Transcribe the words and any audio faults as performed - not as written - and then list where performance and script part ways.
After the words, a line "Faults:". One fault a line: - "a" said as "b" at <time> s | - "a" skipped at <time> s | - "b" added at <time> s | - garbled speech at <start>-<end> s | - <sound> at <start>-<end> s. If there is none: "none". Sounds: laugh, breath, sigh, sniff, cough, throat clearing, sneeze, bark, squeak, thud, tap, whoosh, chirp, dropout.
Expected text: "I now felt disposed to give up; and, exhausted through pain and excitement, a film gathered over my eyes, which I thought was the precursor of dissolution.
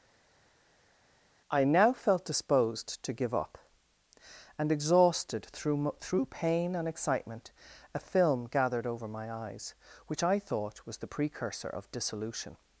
"I now felt disposed to give up; and, exhausted through through pain and excitement, a film gathered over my eyes, which I thought was the precursor of dissolution.
Faults:
- "through" added at 6.0 s